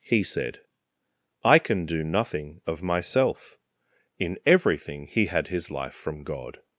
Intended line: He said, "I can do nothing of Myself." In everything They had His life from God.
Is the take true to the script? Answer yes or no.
no